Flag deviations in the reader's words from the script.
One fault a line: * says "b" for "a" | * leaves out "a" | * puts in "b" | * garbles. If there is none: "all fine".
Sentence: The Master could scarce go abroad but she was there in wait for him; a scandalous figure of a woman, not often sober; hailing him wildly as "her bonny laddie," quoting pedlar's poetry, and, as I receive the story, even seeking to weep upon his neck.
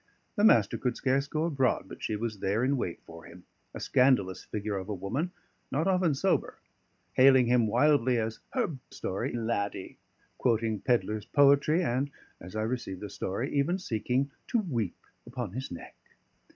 * says "story" for "bonny"